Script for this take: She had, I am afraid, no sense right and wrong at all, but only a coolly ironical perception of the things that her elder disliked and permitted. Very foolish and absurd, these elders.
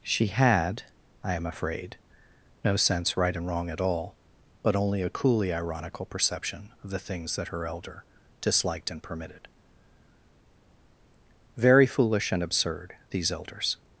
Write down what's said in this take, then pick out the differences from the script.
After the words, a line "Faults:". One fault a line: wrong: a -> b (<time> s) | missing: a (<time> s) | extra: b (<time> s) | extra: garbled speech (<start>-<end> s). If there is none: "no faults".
She had, I am afraid, no sense right and wrong at all, but only a coolly ironical perception of the things that her elder disliked and permitted. Very foolish and absurd, these elders.
Faults:
no faults